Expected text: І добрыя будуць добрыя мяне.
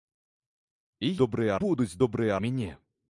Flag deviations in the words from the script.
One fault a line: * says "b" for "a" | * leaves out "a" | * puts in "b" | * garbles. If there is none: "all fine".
all fine